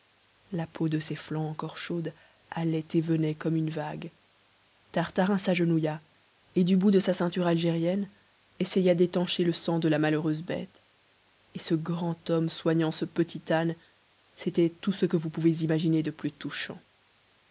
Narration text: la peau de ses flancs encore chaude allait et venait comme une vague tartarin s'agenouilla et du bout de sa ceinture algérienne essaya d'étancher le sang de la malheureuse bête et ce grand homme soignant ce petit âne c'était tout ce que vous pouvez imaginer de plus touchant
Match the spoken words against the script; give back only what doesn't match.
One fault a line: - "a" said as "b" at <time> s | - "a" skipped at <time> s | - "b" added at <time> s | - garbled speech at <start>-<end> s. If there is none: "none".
none